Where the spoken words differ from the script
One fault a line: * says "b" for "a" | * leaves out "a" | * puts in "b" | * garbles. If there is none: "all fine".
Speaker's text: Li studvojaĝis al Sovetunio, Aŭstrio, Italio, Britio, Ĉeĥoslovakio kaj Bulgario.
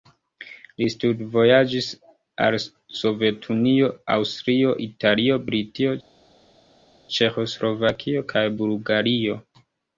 all fine